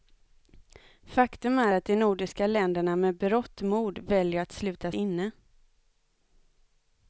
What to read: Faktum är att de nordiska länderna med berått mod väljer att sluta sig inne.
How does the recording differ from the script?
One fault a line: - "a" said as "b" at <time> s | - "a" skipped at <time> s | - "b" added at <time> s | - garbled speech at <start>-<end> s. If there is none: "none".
- "sig" skipped at 4.9 s